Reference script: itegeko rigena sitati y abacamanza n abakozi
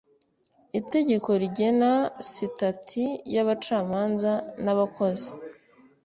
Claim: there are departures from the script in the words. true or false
false